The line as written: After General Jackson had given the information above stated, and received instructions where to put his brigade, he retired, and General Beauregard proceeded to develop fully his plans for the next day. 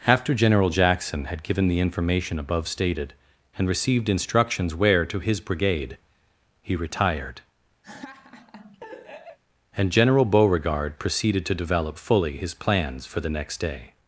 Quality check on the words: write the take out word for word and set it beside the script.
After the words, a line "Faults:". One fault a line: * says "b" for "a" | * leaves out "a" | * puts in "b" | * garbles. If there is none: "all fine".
After General Jackson had given the information above stated, and received instructions where to his brigade, he retired, and General Beauregard proceeded to develop fully his plans for the next day.
Faults:
* leaves out "put"